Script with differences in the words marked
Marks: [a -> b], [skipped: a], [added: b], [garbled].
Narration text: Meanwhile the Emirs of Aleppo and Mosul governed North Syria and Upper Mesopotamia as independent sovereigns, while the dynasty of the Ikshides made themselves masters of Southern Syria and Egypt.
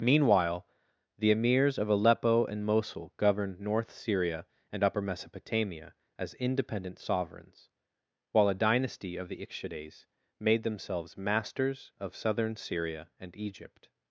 Meanwhile the Emirs of Aleppo and Mosul governed North Syria and Upper Mesopotamia as independent sovereigns, while [the -> a] dynasty of the Ikshides made themselves masters of Southern Syria and Egypt.